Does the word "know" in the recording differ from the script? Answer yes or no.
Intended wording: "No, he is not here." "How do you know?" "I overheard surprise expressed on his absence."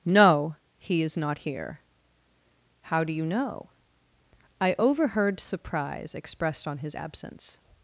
no